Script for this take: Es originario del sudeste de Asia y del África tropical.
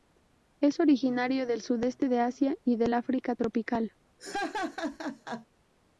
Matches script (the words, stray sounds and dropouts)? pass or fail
fail